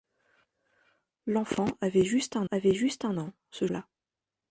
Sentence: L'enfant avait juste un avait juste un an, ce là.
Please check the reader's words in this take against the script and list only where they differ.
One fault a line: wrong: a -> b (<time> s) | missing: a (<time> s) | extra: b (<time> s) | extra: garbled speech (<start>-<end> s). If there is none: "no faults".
no faults